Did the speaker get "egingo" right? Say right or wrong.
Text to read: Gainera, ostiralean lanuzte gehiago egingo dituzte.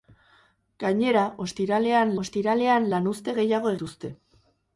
wrong